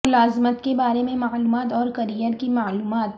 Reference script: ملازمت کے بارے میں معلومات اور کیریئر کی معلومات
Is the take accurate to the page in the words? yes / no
yes